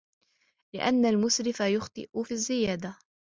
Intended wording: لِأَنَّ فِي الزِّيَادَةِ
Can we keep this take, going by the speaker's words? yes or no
no